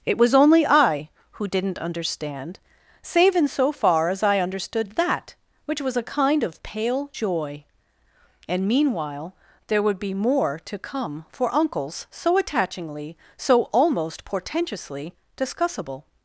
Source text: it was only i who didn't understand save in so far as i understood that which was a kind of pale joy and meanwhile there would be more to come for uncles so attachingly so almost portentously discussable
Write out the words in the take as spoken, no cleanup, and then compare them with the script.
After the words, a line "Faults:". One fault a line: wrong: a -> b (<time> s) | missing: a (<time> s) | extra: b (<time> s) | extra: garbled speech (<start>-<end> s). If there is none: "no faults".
it was only i who didn't understand save in so far as i understood that which was a kind of pale joy and meanwhile there would be more to come for uncles so attachingly so almost portentously discussable
Faults:
no faults